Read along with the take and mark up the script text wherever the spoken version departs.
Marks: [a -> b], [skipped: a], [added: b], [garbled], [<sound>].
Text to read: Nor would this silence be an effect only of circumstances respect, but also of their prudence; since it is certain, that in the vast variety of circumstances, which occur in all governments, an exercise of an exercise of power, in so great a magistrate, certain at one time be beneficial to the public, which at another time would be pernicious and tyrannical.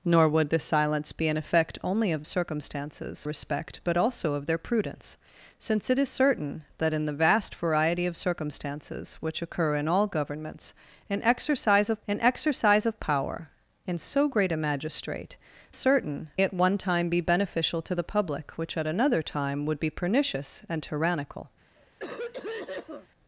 Nor would this silence be an effect only of circumstances respect, but also of their prudence; since it is certain, that in the vast variety of circumstances, which occur in all governments, an exercise of an exercise of power, in so great a magistrate, certain at one time be beneficial to the public, which at another time would be pernicious and tyrannical. [cough]